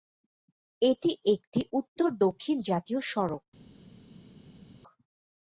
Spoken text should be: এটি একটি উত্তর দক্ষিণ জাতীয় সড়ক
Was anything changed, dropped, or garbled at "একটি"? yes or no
no